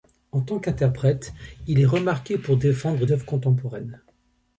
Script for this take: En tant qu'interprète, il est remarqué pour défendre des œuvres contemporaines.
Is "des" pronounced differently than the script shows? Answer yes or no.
yes